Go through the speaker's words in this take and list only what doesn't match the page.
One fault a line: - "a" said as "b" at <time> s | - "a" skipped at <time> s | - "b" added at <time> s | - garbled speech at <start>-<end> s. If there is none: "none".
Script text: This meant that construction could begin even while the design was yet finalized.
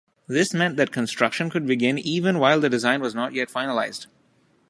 - "not" added at 3.1 s